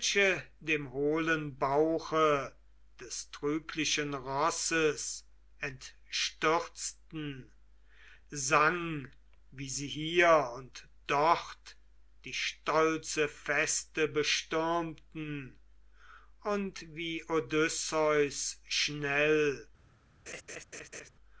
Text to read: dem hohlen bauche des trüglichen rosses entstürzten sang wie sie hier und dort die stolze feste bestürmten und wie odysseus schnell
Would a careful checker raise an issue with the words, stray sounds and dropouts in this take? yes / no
yes